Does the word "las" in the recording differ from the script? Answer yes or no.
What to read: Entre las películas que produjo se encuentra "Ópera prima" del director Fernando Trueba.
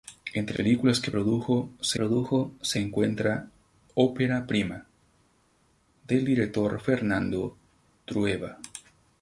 yes